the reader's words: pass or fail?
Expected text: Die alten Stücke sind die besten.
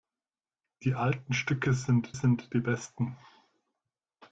fail